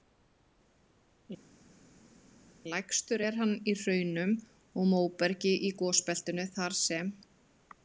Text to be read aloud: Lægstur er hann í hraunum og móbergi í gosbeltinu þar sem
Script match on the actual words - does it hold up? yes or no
yes